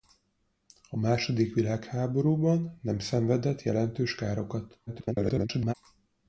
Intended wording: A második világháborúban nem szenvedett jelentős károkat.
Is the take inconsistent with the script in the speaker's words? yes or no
yes